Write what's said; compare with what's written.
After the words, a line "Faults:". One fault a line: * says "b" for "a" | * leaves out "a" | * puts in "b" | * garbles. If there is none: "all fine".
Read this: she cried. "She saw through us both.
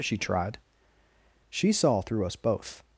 she tried. "She saw through us both.
Faults:
* says "tried" for "cried"